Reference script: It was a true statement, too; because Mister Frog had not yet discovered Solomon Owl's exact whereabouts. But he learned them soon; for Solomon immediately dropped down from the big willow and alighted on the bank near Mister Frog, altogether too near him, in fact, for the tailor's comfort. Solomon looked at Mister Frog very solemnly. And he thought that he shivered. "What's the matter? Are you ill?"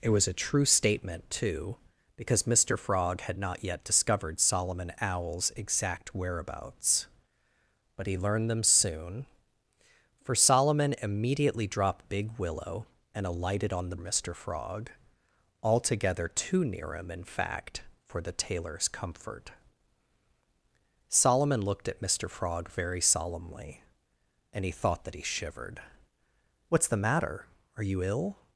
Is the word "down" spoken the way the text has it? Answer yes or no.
no